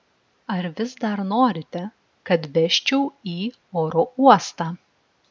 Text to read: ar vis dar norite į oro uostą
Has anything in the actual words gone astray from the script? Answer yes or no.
yes